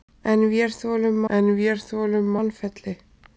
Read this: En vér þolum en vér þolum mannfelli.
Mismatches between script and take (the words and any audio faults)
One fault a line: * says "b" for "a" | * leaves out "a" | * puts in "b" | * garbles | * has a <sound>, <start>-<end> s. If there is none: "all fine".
all fine